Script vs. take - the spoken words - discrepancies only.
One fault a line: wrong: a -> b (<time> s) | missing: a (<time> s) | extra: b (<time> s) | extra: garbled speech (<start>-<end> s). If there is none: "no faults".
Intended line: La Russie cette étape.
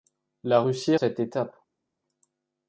no faults